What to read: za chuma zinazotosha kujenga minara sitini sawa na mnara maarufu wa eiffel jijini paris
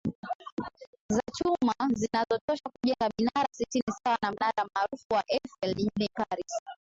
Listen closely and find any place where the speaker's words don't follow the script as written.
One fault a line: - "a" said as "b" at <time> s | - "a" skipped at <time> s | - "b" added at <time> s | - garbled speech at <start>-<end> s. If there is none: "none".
none